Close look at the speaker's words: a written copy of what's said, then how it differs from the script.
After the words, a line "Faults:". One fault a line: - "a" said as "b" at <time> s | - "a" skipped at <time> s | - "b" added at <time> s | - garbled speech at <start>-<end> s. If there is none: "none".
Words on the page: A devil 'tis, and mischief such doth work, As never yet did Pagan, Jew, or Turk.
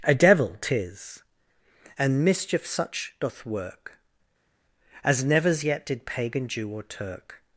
A devil 'tis, and mischief such doth work, As nevers yet did Pagan, Jew, or Turk.
Faults:
- "never" said as "nevers" at 5.2 s